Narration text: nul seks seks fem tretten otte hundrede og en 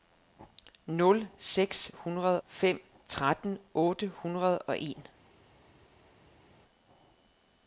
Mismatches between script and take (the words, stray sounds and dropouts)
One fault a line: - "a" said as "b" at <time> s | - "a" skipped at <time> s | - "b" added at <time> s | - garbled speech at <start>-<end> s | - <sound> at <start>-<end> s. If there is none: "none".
- "seks" said as "hundrede" at 1.9 s